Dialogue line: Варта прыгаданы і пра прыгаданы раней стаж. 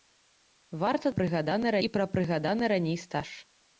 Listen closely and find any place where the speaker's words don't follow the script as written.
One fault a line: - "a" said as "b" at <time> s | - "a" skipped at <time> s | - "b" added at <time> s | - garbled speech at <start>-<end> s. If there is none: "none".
none